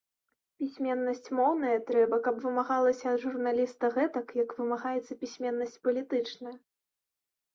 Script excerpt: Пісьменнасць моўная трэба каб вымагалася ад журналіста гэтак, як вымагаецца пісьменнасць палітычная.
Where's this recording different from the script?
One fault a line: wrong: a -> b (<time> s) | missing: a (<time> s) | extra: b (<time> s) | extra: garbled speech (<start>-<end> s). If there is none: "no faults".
no faults